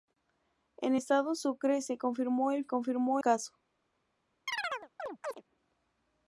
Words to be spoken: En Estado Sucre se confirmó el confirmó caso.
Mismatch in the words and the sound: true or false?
true